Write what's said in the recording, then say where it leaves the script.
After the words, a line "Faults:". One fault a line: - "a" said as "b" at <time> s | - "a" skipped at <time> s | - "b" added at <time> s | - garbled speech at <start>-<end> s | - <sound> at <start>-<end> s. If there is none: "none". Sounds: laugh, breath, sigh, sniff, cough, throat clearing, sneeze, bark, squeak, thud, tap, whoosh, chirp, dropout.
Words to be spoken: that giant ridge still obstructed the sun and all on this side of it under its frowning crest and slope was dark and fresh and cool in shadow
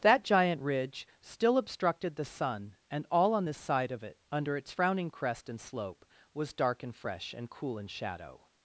that giant ridge still obstructed the sun and all on this side of it under its frowning crest and slope was dark and fresh and cool in shadow
Faults:
none